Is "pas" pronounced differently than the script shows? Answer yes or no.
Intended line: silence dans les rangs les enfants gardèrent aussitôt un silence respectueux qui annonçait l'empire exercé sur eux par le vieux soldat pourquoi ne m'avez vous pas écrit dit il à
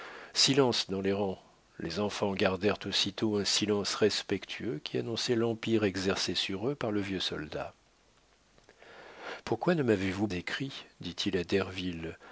yes